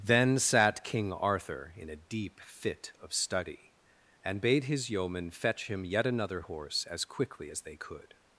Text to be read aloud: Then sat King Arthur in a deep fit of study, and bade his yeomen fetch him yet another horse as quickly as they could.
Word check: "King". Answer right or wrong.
right